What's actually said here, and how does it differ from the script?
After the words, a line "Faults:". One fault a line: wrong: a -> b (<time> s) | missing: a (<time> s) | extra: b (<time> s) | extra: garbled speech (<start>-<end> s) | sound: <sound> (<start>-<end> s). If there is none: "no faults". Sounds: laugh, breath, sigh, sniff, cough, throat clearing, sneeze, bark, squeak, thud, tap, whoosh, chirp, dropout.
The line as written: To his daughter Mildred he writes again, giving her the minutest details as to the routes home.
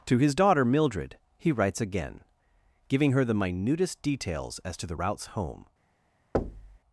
To his daughter Mildred he writes again, giving her the minutest details as to the routes home.
Faults:
sound: thud (6.3-6.8 s)